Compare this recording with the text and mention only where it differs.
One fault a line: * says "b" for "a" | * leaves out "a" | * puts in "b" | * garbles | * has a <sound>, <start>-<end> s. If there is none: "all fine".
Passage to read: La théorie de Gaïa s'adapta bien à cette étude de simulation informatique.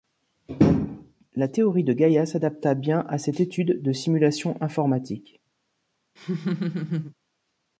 * has a laugh, 6.2-7.1 s